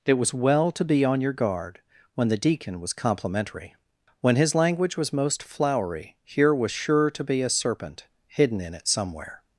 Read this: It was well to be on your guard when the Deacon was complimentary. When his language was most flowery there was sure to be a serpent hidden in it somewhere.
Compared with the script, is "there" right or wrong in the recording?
wrong